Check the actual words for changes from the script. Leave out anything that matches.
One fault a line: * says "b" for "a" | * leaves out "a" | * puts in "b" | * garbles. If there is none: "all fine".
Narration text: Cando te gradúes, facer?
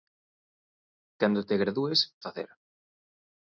all fine